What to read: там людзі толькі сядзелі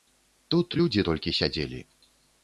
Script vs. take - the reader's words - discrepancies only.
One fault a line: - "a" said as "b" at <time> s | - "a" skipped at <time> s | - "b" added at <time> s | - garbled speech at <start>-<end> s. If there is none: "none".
- "там" said as "тут" at 0.5 s